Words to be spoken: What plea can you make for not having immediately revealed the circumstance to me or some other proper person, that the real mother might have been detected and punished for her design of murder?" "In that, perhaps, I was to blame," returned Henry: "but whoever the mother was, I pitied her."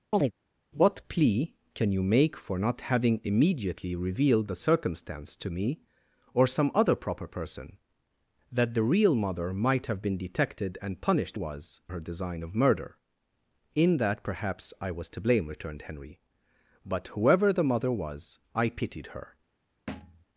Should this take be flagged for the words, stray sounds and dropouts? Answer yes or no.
yes